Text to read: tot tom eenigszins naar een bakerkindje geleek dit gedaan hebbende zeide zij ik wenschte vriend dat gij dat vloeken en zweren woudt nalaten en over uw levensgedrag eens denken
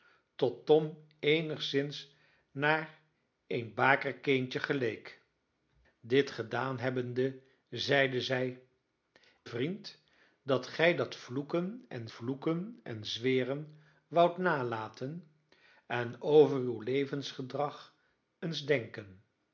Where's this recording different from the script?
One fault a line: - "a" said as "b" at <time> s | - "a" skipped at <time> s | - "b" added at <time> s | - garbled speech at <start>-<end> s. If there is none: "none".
- "ik wenschte" skipped at 8.6 s
- "vloeken en" added at 12.1 s